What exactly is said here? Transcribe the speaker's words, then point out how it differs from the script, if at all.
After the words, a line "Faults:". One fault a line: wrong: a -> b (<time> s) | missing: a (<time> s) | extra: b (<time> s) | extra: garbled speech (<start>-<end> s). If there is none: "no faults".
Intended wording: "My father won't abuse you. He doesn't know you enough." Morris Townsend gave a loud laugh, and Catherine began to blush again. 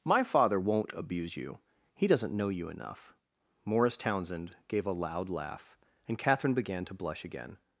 "My father won't abuse you. He doesn't know you enough." Morris Townsend gave a loud laugh, and Catherine began to blush again.
Faults:
no faults